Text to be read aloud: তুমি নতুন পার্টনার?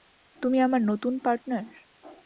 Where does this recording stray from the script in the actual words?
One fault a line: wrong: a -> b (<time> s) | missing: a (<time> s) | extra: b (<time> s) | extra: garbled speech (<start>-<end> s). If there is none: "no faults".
extra: আমার (0.6 s)